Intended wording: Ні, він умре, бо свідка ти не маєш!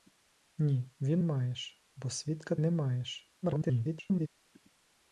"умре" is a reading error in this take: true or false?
true